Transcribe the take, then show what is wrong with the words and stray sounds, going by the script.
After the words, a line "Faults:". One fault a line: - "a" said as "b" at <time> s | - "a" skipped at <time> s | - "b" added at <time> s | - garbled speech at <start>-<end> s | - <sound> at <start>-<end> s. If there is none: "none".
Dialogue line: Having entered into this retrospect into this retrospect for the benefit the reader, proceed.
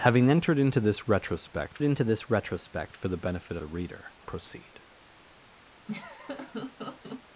Having entered into this retrospect into this retrospect for the benefit the reader, proceed.
Faults:
- laugh at 5.9-7.2 s